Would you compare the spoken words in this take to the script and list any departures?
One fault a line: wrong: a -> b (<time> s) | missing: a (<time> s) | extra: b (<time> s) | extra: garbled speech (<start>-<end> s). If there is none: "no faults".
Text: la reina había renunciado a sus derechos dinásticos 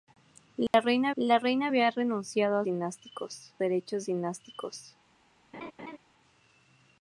extra: la reina (1.2 s)
wrong: sus -> dinásticos (2.6 s)